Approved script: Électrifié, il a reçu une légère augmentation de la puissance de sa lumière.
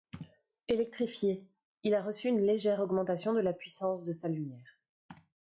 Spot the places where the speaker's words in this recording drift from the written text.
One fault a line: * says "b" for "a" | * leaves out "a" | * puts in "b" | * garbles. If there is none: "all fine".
all fine